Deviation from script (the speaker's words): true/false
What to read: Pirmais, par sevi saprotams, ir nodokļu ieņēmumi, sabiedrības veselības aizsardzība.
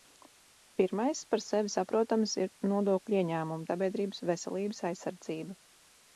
false